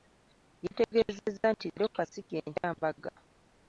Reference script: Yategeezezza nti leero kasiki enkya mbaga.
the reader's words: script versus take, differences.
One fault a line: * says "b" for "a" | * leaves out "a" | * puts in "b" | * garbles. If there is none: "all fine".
all fine